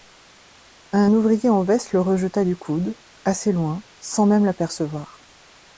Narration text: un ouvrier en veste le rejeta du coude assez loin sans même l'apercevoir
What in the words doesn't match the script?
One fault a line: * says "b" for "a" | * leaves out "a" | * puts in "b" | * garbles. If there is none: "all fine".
all fine